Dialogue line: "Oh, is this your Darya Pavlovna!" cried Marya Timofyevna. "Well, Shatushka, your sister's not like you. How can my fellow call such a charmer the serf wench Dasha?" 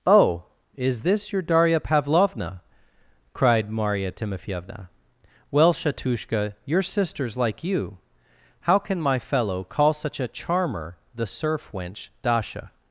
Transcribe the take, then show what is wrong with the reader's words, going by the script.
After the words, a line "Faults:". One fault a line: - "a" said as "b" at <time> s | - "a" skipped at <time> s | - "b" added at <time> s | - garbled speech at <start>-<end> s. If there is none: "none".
"Oh, is this your Darya Pavlovna!" cried Marya Timofyevna. "Well, Shatushka, your sister's like you. How can my fellow call such a charmer the serf wench Dasha?"
Faults:
- "not" skipped at 7.4 s